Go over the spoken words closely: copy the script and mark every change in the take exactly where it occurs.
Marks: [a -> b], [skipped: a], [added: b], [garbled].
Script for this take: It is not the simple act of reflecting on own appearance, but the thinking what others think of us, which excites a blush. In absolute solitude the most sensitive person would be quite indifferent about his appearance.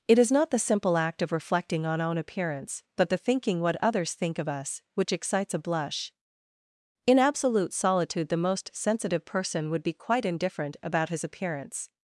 It is not the simple act of reflecting on own appearance, but the thinking what others think of us, which excites a blush. In absolute solitude the most sensitive person would be quite indifferent about his appearance.